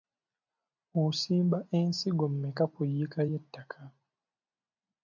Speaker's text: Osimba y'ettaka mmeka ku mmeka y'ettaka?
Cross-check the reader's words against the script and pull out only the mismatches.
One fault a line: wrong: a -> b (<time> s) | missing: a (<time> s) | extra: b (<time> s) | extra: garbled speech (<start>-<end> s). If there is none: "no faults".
wrong: y'ettaka -> ensigo (1.8 s)
wrong: mmeka -> yiika (2.9 s)